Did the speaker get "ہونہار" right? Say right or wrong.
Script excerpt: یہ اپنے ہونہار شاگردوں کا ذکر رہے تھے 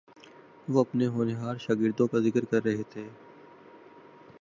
right